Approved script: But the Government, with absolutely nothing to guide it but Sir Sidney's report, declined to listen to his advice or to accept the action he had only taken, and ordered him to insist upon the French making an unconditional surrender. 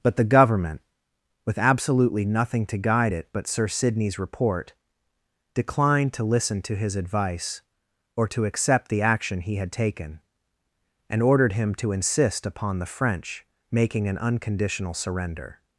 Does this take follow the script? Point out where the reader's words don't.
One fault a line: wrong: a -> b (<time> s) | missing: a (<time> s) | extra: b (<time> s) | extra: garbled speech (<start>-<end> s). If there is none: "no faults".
missing: only (9.7 s)